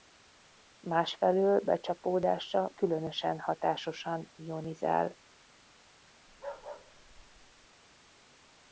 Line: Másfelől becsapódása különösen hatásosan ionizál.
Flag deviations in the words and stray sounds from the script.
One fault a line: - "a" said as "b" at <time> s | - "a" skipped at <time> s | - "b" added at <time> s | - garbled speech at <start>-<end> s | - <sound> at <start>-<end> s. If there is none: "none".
- bark at 6.3-7.7 s